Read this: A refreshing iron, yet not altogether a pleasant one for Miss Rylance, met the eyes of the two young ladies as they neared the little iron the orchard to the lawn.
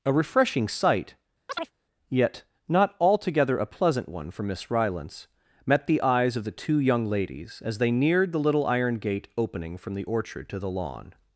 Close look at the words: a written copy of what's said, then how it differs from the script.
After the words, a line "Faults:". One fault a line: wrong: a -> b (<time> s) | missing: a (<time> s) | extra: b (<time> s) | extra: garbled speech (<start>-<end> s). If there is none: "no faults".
A refreshing sight, yet not altogether a pleasant one for Miss Rylance, met the eyes of the two young ladies as they neared the little iron gate opening from the orchard to the lawn.
Faults:
wrong: iron -> sight (0.7 s)
extra: gate opening from (9.0 s)